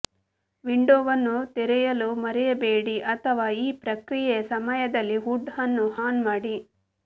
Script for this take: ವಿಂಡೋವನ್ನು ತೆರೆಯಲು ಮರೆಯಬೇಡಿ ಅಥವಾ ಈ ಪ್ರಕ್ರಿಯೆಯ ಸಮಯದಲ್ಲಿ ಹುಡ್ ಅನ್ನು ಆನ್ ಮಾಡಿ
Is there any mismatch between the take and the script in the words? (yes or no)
no